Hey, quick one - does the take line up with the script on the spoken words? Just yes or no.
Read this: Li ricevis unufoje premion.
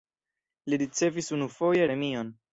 yes